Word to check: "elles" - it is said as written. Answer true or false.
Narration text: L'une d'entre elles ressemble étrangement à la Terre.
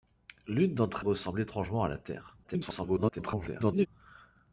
false